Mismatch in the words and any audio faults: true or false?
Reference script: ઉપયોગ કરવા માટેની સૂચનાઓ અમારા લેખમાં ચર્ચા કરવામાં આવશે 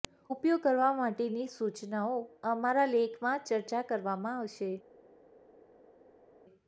false